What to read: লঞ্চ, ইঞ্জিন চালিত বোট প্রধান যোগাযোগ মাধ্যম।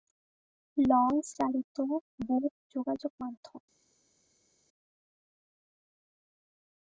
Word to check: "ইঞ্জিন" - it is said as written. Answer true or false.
false